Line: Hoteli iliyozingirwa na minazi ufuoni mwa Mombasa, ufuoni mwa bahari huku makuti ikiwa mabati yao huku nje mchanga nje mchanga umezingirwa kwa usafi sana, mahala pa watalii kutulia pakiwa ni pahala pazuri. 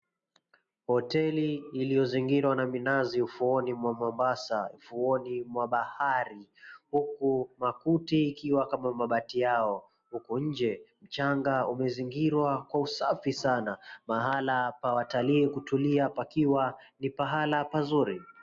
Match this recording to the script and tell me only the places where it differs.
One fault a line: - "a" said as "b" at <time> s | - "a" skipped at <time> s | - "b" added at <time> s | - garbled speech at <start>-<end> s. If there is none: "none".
- "kama" added at 8.7 s
- "nje mchanga" skipped at 11.7 s